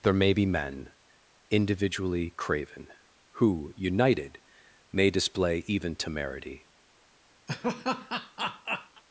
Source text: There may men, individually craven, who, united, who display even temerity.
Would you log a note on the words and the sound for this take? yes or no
yes